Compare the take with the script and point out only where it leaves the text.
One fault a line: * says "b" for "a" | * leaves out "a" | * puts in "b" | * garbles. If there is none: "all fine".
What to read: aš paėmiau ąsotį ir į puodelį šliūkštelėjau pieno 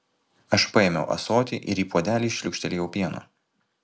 all fine